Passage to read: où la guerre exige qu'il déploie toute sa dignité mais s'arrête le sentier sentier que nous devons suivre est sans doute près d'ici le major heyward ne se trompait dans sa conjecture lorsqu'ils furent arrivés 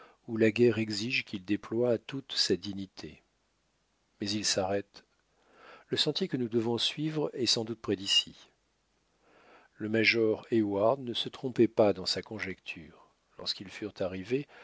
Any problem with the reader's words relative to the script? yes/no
yes